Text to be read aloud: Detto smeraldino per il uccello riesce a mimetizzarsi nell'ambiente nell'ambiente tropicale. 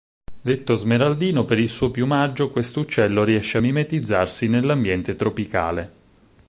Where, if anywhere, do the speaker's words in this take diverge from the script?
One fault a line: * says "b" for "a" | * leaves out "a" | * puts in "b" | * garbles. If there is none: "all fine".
* puts in "suo piumaggio questo"
* leaves out "nell'ambiente"